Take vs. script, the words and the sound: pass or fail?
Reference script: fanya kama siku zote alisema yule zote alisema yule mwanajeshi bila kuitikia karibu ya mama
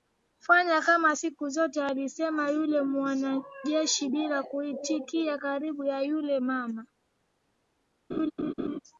fail